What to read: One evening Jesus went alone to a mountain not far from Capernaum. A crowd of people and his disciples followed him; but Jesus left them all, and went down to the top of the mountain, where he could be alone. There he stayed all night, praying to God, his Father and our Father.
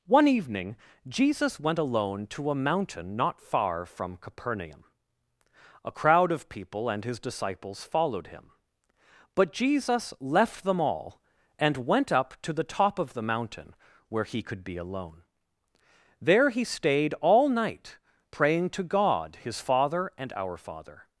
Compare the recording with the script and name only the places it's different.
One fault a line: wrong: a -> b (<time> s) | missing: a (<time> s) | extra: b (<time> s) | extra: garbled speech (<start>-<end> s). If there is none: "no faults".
wrong: down -> up (12.1 s)